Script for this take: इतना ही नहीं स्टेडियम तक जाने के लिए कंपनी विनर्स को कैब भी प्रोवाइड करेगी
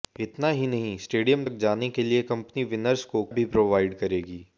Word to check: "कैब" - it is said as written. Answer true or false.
false